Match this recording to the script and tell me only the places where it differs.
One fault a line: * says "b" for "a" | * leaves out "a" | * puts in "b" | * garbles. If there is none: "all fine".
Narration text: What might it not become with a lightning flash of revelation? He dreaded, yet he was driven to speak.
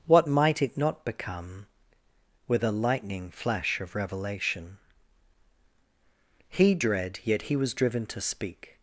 * says "dread" for "dreaded"